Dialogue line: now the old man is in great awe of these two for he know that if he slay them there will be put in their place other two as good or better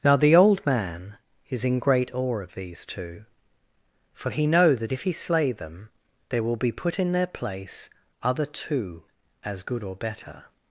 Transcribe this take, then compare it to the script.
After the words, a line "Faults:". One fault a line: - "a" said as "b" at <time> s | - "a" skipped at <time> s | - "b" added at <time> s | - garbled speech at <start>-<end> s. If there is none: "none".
now the old man is in great awe of these two for he know that if he slay them there will be put in their place other two as good or better
Faults:
none